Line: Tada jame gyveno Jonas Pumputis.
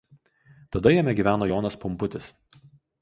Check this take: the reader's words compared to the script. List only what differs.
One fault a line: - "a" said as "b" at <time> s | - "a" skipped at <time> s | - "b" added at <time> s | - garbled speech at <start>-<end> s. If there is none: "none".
none